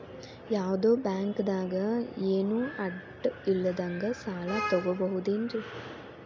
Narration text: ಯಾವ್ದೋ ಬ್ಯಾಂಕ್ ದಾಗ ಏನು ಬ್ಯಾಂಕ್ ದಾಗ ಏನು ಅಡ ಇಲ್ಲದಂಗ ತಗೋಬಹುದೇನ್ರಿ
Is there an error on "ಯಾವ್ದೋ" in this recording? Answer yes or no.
no